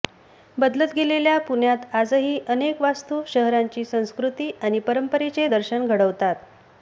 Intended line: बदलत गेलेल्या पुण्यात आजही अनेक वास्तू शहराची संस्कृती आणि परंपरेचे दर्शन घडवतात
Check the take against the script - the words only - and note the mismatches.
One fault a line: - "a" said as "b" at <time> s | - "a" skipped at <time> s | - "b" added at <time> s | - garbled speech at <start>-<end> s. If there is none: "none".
none